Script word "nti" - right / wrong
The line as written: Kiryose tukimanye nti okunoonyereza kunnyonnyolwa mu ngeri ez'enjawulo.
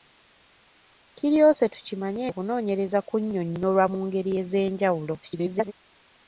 wrong